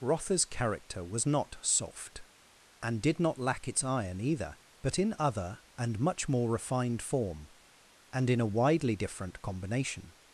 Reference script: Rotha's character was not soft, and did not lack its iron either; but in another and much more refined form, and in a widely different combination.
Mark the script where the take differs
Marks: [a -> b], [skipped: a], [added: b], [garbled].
Rotha's character was not soft, and did not lack its iron either; but in [another -> other] and much more refined form, and in a widely different combination.